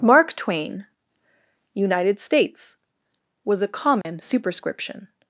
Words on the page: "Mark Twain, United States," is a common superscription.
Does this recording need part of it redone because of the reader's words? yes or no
yes